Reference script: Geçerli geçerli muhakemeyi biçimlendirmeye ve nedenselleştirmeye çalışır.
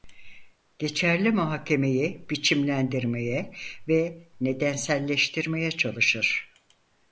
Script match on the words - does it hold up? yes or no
no